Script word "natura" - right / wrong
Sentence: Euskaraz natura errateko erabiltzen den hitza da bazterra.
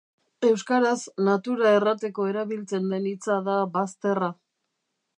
right